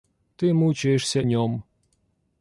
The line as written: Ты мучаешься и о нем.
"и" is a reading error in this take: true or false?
true